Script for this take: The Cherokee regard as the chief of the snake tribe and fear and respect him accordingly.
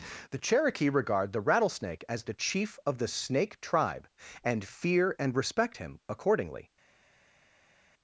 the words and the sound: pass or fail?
fail